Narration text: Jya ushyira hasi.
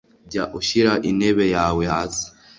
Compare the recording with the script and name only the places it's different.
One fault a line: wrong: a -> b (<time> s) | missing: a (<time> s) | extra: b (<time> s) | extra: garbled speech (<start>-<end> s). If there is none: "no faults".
extra: intebe yawe (1.1 s)